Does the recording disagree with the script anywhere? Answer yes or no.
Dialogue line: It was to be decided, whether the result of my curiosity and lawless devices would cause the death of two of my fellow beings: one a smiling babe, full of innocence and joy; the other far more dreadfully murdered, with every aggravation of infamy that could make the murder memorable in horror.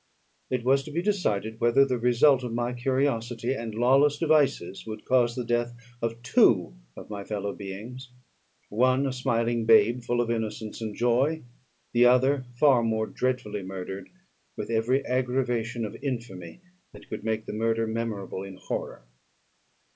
no